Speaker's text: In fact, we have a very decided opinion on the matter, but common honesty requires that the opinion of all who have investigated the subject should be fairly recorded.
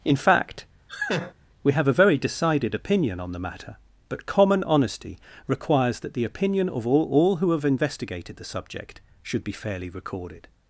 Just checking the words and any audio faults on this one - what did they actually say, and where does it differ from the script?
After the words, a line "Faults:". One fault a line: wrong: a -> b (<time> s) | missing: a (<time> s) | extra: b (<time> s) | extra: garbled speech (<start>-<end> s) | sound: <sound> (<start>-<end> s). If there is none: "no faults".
In fact, we have a very decided opinion on the matter, but common honesty requires that the opinion of all all who have investigated the subject should be fairly recorded.
Faults:
sound: laugh (0.9-1.3 s)
extra: all (7.1 s)